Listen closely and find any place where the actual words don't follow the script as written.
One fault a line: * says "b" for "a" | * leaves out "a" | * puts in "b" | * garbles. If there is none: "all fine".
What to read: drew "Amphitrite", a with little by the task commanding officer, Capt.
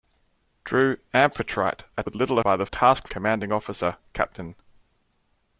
all fine